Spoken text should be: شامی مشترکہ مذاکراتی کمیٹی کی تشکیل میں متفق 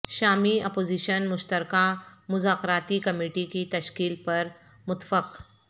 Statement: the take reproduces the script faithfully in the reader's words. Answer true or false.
false